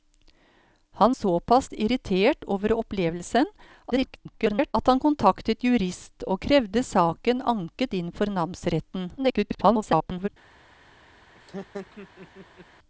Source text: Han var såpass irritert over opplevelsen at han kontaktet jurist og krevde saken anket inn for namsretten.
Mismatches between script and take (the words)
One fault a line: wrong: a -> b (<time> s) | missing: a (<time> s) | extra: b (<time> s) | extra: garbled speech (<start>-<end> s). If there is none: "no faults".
missing: var (1.1 s)
extra: garbled speech (3.9-4.7 s)
extra: garbled speech (9.2-10.3 s)